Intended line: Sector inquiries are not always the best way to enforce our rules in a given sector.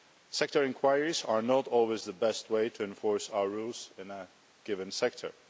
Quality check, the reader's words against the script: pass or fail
pass